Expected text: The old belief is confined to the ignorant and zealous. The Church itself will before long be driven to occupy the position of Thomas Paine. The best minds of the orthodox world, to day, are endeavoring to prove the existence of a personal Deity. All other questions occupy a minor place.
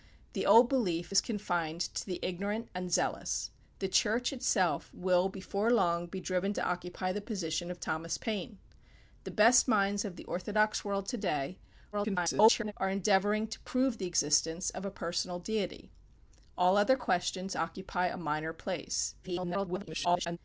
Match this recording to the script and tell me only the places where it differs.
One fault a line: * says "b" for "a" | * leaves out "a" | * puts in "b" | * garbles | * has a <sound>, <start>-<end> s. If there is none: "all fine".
* garbles
* garbles